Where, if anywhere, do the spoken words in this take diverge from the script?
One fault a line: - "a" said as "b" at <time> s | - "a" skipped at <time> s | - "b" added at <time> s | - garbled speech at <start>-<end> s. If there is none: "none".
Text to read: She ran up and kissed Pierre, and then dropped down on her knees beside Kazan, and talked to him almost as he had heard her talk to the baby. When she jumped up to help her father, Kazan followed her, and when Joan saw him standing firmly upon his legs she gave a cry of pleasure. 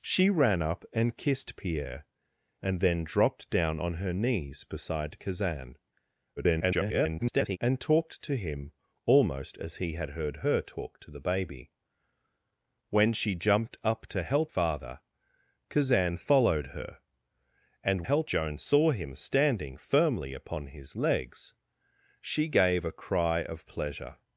- garbled speech at 6.4-7.6 s
- "her" skipped at 14.5 s
- "when" said as "help" at 18.0 s